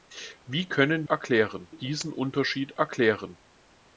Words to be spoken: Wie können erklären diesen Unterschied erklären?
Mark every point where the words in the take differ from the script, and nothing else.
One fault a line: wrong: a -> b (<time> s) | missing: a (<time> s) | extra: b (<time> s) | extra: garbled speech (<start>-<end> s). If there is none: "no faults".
no faults